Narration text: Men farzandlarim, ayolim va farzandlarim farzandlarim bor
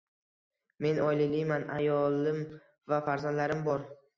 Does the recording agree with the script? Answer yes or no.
no